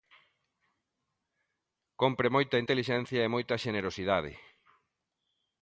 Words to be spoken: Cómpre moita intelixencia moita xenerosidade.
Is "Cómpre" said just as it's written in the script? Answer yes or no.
yes